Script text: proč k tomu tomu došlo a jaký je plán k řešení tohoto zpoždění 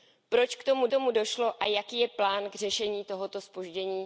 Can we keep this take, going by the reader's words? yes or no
yes